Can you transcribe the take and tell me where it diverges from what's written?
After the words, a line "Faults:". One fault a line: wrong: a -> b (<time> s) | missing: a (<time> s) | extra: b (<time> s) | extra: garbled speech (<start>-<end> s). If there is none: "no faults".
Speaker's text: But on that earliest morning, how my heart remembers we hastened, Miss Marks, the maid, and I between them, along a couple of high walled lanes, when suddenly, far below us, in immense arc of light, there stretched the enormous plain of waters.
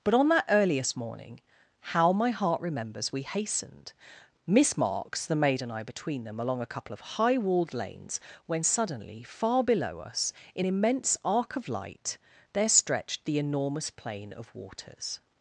But on that earliest morning, how my heart remembers we hastened, Miss Marks, the maid, and I between them, along a couple of high walled lanes, when suddenly, far below us, in immense arc of light, there stretched the enormous plain of waters.
Faults:
no faults